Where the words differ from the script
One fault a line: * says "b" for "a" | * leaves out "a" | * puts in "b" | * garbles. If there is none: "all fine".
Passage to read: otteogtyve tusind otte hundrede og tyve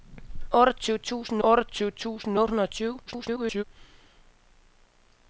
* puts in "otteogtyve tusind"
* garbles